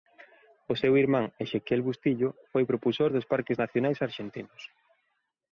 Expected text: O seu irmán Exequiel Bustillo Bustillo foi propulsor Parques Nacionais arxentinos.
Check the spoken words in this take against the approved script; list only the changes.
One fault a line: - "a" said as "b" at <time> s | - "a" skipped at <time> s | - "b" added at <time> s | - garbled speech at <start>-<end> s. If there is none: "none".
- "Bustillo" skipped at 2.3 s
- "dos" added at 3.1 s